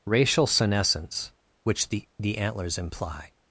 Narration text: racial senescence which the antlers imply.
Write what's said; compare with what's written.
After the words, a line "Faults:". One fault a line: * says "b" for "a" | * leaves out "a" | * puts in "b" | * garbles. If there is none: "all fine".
racial senescence which the the antlers imply.
Faults:
* puts in "the"